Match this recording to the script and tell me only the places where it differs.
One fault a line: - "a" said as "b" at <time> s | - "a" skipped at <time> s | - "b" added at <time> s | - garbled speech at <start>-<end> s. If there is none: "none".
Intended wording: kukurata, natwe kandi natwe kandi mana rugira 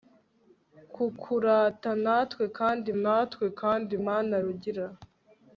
none